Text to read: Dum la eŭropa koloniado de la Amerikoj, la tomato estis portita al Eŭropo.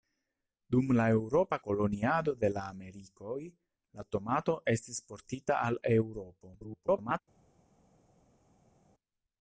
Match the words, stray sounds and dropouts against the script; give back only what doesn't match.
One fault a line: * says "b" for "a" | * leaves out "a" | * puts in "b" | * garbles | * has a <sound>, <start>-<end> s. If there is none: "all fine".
* garbles